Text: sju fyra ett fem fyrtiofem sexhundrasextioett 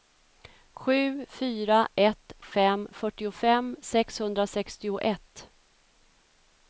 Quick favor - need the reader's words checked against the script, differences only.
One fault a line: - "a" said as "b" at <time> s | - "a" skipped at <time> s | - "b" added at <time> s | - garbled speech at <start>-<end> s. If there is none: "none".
none